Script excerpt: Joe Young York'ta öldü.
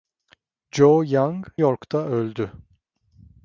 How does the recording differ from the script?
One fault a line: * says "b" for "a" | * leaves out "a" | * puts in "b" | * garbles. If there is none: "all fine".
all fine